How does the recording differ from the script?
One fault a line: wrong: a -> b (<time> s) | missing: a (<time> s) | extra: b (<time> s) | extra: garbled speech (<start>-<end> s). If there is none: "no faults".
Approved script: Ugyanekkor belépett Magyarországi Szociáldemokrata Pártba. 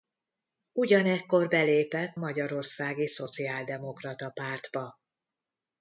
no faults